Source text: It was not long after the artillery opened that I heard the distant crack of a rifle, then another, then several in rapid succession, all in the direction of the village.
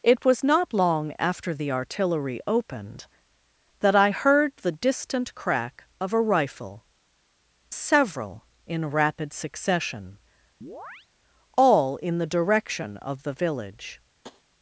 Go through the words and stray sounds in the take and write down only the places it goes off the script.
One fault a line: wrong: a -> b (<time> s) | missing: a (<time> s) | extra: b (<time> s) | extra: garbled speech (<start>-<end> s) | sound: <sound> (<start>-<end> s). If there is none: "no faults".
missing: then another then (6.8 s)
sound: chirp (10.6-11.1 s)
sound: tap (14.2-14.4 s)